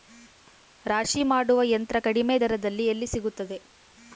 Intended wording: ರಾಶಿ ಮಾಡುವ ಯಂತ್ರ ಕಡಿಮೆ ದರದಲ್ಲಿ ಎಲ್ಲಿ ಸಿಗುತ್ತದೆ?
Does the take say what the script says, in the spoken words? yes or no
yes